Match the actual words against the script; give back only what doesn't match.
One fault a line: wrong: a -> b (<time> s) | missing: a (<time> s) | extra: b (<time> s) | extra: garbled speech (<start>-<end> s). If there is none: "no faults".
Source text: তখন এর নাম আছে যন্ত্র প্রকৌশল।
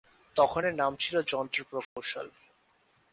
wrong: আছে -> ছিল (1.0 s)